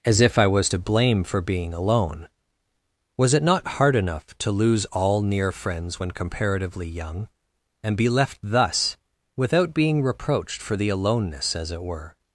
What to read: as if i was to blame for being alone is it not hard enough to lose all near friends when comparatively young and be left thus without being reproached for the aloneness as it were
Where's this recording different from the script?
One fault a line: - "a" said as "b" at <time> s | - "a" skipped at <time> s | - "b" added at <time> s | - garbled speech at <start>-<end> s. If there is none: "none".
- "is" said as "was" at 3.2 s